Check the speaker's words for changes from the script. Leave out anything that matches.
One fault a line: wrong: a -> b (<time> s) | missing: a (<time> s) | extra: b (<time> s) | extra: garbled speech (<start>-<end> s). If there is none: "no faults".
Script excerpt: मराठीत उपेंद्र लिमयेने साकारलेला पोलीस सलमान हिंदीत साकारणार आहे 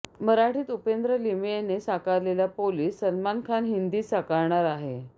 extra: खान (3.4 s)